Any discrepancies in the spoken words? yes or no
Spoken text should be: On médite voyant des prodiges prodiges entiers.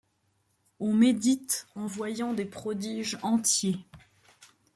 yes